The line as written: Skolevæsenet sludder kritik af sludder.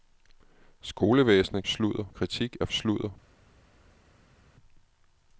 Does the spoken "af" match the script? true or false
true